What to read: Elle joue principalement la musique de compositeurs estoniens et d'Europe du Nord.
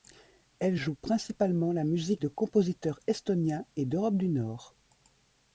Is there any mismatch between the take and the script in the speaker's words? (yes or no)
no